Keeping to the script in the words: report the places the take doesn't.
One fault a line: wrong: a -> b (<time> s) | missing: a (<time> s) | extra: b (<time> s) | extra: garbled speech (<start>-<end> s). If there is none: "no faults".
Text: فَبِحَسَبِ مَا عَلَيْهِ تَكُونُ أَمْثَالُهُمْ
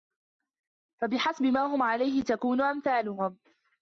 extra: هُمْ (1.6 s)